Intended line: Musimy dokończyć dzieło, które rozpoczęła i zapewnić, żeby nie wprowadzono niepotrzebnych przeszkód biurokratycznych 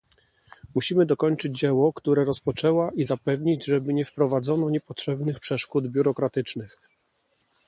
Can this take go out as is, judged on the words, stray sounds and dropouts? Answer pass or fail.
pass